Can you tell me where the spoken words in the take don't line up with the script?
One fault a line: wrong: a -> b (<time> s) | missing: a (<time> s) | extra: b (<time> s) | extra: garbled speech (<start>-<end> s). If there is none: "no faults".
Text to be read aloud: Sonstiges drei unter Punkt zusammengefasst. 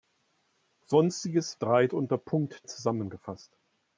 no faults